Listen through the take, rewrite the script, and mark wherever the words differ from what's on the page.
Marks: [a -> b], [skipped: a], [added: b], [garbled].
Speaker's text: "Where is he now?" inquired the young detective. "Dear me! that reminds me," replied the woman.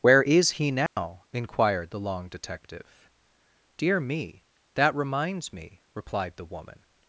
"Where is he now?" inquired the [young -> long] detective. "Dear me! that reminds me," replied the woman.